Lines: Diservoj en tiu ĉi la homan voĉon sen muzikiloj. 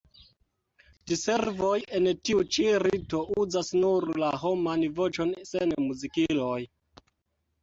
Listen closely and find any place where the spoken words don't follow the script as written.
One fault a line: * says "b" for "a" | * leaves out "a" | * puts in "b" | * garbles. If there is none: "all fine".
* puts in "rito uzas nur"